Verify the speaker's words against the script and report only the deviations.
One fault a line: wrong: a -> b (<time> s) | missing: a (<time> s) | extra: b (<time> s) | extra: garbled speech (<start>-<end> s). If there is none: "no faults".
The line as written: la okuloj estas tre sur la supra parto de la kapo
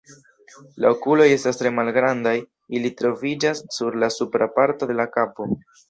extra: malgrandaj ili troviĝas (1.8 s)